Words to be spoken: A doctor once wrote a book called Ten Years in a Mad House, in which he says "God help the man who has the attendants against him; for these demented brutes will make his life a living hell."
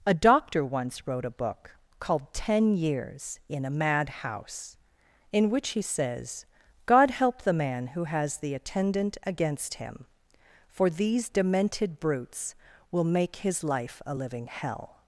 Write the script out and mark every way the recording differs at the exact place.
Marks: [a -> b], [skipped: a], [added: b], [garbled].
A doctor once wrote a book called Ten Years in a Mad House, in which he says "God help the man who has the [attendants -> attendant] against him; for these demented brutes will make his life a living hell."